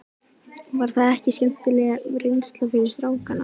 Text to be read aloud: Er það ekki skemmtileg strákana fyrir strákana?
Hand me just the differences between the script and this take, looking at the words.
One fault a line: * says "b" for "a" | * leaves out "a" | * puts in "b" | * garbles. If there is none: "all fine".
* says "Var" for "Er"
* says "reynsla" for "strákana"